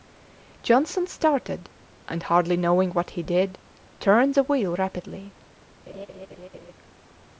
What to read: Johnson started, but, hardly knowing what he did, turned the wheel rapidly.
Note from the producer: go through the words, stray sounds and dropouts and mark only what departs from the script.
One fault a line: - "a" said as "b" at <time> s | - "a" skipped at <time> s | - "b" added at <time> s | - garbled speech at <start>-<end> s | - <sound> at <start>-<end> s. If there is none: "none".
- "but" said as "and" at 2.1 s
- laugh at 5.9-6.7 s